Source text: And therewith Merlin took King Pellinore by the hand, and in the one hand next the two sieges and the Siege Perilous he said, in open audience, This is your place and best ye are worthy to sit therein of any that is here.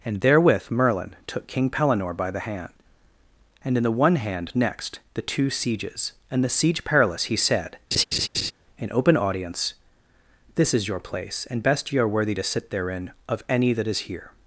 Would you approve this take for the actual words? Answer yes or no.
yes